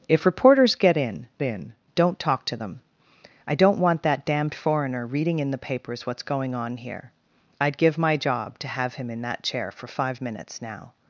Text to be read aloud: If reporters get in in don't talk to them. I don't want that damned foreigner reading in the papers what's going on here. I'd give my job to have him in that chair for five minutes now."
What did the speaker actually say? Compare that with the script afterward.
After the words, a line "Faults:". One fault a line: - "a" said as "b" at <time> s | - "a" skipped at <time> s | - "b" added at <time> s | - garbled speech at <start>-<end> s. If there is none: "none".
If reporters get in in don't talk to them. I don't want that damned foreigner reading in the papers what's going on here. I'd give my job to have him in that chair for five minutes now."
Faults:
none